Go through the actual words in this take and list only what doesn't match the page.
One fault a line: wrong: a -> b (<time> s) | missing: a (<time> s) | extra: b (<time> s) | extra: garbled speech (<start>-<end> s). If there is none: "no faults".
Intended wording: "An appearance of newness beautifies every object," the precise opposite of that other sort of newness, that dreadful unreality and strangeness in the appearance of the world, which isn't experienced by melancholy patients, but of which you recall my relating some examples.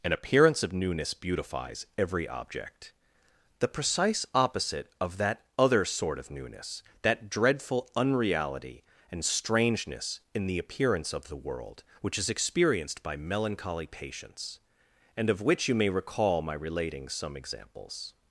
wrong: isn't -> is (12.2 s)
wrong: but -> and (15.2 s)
extra: may (15.8 s)